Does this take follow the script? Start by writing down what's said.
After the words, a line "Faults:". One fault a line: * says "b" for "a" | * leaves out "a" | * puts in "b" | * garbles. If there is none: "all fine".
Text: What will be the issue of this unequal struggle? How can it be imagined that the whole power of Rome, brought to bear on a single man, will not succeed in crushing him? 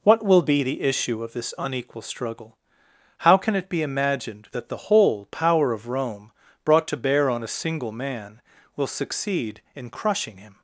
What will be the issue of this unequal struggle? How can it be imagined that the whole power of Rome, brought to bear on a single man, will succeed in crushing him?
Faults:
* leaves out "not"